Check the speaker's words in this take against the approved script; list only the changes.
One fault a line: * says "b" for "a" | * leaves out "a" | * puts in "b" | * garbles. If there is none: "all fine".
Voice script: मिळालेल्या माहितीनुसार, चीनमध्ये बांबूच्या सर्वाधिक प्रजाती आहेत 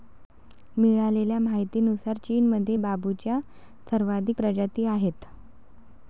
all fine